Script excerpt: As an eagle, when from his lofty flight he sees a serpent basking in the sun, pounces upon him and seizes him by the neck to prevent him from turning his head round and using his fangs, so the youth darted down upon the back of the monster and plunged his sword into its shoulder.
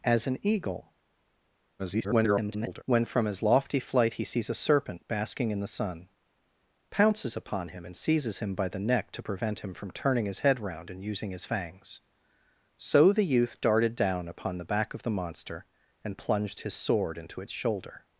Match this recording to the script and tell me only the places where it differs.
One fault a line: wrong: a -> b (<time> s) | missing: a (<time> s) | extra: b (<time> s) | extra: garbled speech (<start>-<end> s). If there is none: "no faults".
extra: garbled speech (1.8-2.8 s)